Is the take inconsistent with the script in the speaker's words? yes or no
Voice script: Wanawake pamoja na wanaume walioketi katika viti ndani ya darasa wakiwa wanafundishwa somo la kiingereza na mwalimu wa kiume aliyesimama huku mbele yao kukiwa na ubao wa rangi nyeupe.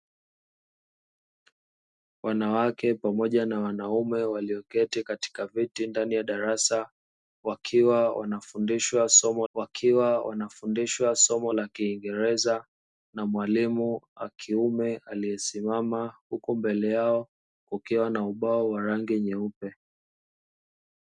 yes